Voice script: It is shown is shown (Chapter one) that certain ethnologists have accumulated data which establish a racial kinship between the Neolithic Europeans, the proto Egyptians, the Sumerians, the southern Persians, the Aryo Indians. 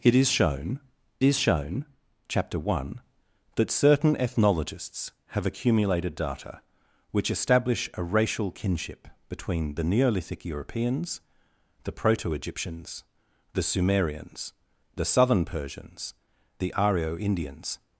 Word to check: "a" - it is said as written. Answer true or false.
true